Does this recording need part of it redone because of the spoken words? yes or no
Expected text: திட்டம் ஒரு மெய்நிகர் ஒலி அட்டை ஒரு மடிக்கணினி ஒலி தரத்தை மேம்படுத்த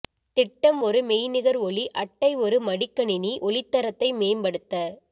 no